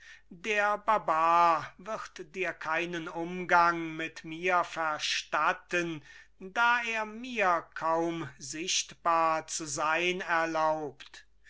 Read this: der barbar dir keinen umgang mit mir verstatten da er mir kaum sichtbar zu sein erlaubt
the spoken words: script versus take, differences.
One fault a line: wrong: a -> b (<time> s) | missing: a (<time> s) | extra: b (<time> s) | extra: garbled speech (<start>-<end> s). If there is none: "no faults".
extra: wird (1.8 s)